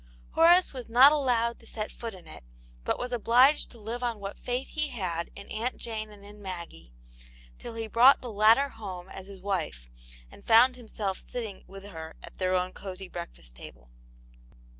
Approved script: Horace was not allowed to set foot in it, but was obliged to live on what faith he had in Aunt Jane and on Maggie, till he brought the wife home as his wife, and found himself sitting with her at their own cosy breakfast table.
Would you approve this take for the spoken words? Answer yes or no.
no